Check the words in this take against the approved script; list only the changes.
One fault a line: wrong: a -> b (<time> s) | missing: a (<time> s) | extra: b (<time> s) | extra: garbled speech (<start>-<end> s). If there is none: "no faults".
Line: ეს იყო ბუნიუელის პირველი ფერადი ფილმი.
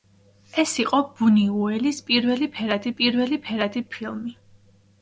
extra: პირველი ფერადი (3.0 s)